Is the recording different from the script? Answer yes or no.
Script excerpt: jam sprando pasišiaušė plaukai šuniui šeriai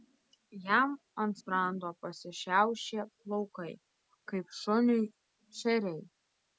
yes